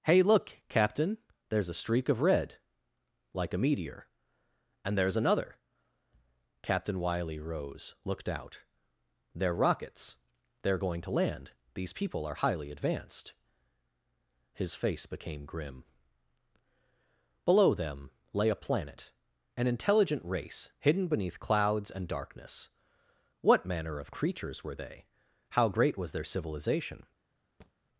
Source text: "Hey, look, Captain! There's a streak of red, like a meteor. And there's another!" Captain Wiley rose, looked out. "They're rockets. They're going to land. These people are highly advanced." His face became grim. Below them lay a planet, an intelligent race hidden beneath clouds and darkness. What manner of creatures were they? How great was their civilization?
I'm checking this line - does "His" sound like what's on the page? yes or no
yes